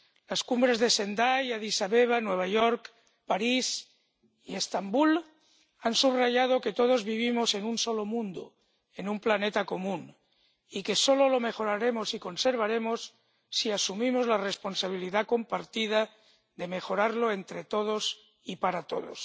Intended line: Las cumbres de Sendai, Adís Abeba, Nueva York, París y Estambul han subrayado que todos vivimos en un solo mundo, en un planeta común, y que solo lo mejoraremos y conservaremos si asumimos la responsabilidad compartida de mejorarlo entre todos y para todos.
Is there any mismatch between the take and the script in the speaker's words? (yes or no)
no